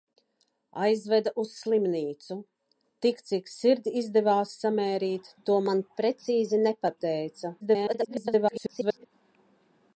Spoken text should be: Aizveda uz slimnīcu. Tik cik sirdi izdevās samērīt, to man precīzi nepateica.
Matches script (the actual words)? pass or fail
fail